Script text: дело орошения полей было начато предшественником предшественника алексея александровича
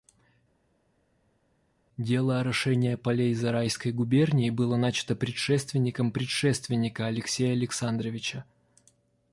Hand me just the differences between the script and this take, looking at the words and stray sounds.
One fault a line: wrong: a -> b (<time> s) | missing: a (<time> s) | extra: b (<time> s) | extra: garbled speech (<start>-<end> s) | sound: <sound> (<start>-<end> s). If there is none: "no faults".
extra: зарайской губернии (3.3 s)